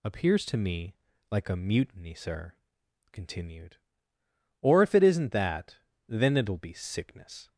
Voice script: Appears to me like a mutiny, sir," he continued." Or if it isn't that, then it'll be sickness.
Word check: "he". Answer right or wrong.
wrong